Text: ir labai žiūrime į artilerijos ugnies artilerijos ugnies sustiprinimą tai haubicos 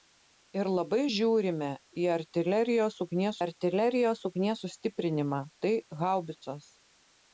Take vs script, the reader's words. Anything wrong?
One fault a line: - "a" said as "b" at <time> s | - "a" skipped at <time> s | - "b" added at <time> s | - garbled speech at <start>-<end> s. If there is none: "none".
none